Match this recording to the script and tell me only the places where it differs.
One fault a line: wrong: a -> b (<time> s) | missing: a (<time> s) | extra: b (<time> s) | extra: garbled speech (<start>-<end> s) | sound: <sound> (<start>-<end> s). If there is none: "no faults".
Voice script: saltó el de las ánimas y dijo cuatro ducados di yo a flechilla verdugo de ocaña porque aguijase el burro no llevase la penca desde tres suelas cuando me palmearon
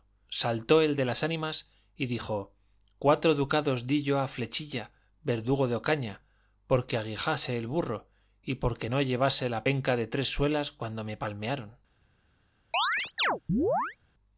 extra: y porque (8.4 s)
wrong: desde -> de (9.9 s)
sound: chirp (12.7-14.0 s)